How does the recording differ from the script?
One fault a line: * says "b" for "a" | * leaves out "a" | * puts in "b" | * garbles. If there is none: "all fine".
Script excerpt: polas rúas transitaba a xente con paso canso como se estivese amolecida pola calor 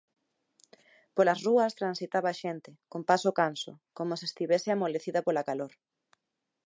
all fine